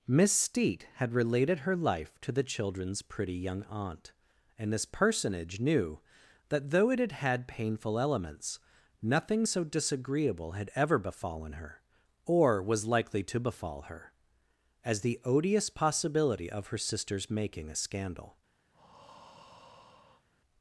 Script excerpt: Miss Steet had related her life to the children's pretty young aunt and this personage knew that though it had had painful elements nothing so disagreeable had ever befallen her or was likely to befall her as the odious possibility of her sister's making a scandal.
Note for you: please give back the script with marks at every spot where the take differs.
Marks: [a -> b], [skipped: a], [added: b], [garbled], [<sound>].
Miss Steet had related her life to the children's pretty young aunt and this personage knew that though it had had painful elements nothing so disagreeable had ever befallen her or was likely to befall her as the odious possibility of her sister's making a scandal. [breath]